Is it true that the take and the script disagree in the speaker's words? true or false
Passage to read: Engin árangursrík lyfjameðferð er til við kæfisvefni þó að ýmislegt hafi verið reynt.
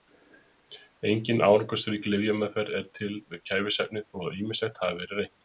false